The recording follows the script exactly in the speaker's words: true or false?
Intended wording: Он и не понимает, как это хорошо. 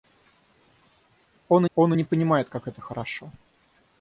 false